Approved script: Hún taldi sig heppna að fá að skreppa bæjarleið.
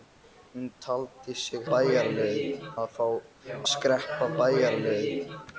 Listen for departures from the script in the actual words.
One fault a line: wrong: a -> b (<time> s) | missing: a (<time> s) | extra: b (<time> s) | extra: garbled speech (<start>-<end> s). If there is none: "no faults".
wrong: heppna -> bæjarleið (1.7 s)
missing: að (3.1 s)